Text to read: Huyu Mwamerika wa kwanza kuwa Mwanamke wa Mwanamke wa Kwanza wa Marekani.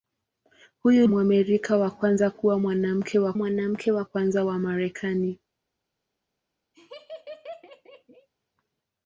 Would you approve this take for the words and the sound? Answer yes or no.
no